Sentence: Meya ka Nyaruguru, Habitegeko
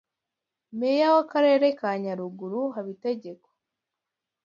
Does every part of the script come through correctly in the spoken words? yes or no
no